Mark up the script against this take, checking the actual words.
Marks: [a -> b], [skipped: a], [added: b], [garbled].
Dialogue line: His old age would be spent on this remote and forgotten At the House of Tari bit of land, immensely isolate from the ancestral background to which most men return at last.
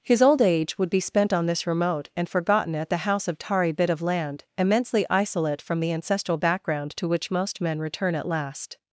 His old age would be spent on this remote and forgotten At the House of Tari bit of land, immensely isolate from the ancestral background to which most men return at last.